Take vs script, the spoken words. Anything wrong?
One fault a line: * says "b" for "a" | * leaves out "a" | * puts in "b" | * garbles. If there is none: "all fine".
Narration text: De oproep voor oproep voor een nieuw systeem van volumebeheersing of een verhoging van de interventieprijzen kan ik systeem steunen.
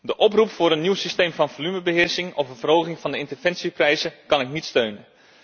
* leaves out "oproep voor"
* says "niet" for "systeem"